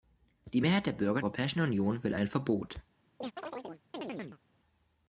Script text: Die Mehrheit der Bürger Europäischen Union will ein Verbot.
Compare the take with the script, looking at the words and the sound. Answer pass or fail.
fail